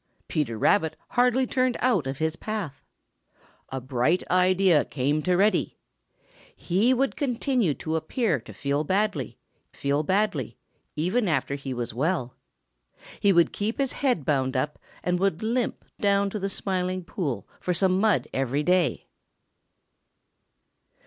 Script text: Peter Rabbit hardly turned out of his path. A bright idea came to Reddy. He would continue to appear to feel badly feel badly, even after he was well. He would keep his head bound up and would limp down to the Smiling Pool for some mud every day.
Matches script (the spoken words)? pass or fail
pass